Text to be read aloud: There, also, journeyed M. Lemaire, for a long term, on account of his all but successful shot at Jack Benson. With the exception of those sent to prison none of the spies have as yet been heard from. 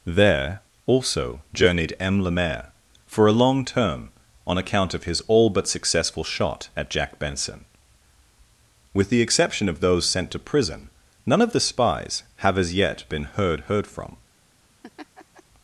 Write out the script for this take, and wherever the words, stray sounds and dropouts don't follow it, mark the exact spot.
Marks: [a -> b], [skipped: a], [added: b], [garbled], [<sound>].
There, also, journeyed M. Lemaire, for a long term, on account of his all but successful shot at Jack Benson. With the exception of those sent to prison none of the spies have as yet been heard [added: heard] from. [laugh]